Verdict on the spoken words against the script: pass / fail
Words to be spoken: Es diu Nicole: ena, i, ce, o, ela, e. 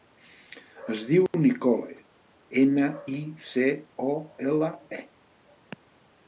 pass